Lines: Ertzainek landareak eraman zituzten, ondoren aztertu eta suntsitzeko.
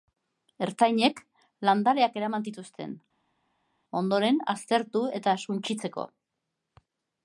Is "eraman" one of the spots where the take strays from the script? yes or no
no